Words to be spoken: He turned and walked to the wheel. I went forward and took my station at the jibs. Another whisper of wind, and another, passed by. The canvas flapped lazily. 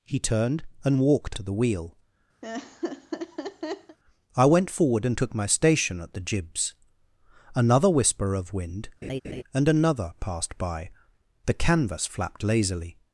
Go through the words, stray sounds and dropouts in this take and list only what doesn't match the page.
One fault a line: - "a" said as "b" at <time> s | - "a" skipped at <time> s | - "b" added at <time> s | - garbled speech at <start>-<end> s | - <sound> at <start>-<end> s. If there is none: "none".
- laugh at 2.4-4.0 s
- laugh at 9.0-9.4 s